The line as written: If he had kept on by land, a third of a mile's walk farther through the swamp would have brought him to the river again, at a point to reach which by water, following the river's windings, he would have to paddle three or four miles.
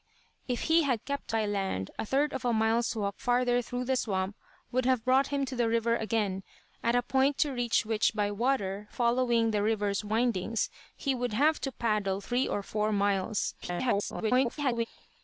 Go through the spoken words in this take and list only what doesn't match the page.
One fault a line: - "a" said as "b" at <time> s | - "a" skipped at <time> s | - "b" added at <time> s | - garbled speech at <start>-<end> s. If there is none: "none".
- "on" skipped at 1.4 s
- garbled speech at 13.6-14.9 s